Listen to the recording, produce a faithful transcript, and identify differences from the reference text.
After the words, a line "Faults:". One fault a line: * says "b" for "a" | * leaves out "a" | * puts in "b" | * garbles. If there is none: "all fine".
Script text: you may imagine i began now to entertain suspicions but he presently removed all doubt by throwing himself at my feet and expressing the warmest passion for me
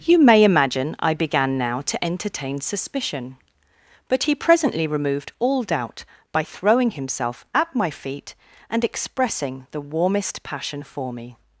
you may imagine i began now to entertain suspicion but he presently removed all doubt by throwing himself at my feet and expressing the warmest passion for me
Faults:
* says "suspicion" for "suspicions"